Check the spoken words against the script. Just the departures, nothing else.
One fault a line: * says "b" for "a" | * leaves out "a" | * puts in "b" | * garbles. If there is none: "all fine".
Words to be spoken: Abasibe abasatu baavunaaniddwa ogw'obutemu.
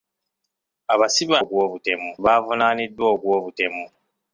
* says "ogw'obutemu" for "abasatu"